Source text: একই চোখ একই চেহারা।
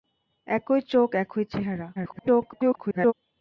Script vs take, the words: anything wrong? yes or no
yes